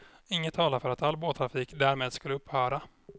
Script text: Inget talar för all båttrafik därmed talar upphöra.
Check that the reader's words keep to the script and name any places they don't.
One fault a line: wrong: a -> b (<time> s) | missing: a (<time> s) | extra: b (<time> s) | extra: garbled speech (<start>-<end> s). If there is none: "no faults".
extra: att (0.9 s)
wrong: talar -> skulle (2.1 s)